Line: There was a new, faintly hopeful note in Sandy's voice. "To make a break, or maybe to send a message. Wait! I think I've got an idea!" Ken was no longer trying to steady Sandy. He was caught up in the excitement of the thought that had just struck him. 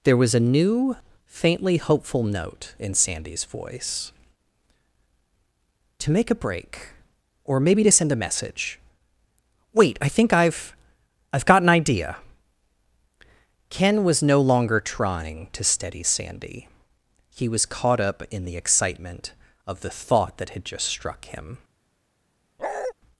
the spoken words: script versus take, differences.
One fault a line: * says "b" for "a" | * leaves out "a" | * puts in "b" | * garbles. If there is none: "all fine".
* puts in "I've"